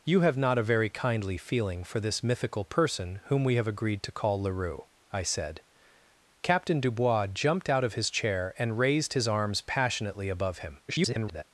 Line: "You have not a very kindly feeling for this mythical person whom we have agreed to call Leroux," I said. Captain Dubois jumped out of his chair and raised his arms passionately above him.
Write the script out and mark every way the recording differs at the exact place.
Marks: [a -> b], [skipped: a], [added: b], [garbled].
"You have not a very kindly feeling for this mythical person whom we have agreed to call Leroux," I said. Captain Dubois jumped out of his chair and raised his arms passionately above him. [garbled]